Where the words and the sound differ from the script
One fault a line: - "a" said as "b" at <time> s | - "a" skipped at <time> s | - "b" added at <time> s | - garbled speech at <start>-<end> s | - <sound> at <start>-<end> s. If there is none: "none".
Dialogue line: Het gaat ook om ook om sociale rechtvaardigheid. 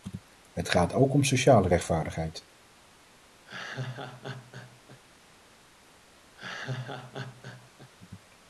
- "ook om" skipped at 1.2 s
- laugh at 3.5-5.0 s
- laugh at 6.4-7.9 s